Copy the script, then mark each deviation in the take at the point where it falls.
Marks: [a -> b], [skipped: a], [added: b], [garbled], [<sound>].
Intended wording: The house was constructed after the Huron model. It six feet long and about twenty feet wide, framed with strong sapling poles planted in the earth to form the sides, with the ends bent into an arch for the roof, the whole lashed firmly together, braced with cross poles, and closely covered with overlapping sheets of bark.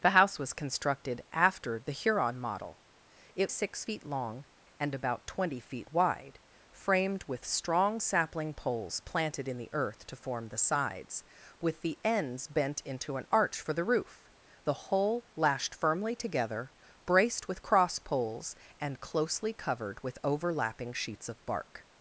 The house was constructed after the Huron model. It six feet long and about twenty feet wide, framed with strong sapling poles planted in the earth to form the sides, with the ends bent into an arch for the roof, the whole lashed firmly together, braced with cross poles, and closely covered with overlapping sheets of bark.